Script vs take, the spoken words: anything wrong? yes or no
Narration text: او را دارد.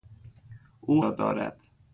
no